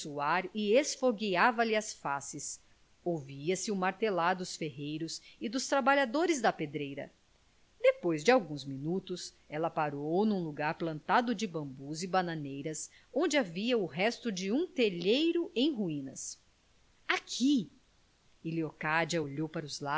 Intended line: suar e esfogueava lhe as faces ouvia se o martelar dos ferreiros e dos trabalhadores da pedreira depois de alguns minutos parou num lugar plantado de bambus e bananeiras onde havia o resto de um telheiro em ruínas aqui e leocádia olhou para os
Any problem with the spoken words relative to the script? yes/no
yes